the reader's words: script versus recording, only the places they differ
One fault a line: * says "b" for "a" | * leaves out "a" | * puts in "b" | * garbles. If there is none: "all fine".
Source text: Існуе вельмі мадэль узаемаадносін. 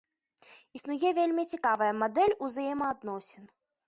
* puts in "цікавая"